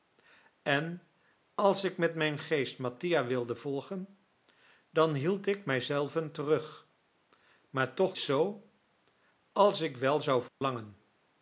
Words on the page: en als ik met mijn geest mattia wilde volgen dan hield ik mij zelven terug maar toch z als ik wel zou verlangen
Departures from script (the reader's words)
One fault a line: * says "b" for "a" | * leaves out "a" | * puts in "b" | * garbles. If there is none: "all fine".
all fine